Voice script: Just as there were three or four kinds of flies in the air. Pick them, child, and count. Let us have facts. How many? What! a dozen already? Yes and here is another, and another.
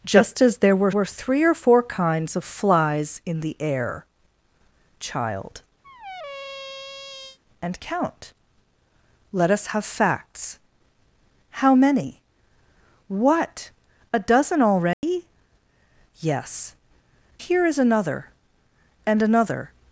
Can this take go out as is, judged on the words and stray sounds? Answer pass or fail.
fail